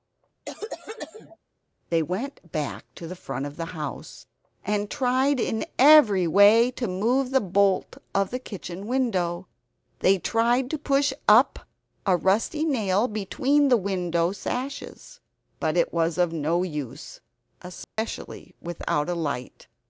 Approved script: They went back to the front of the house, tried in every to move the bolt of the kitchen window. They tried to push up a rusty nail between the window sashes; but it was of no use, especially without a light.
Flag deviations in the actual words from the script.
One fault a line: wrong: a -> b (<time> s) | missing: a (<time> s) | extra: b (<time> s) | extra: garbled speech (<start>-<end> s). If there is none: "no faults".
extra: and (4.6 s)
extra: way (6.2 s)